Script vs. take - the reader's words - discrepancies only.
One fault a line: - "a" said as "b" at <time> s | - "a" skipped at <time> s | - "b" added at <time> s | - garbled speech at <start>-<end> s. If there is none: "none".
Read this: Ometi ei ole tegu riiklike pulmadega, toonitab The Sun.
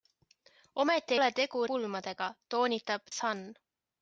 - "ei" skipped at 1.1 s
- "riiklike" skipped at 1.6 s
- "The" skipped at 3.0 s